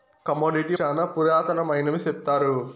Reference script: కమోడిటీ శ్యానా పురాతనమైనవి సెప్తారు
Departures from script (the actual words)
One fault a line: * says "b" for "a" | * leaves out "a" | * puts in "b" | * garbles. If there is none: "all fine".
all fine